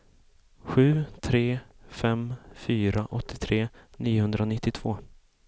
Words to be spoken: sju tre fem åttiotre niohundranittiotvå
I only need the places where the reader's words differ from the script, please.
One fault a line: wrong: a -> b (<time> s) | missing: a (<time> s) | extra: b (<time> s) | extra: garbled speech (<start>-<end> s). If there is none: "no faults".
extra: fyra (2.5 s)